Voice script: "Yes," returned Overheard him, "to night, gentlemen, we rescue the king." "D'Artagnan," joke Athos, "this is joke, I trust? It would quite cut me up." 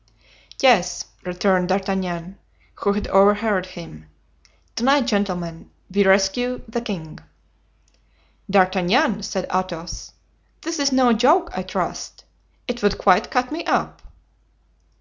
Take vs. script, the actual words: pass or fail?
fail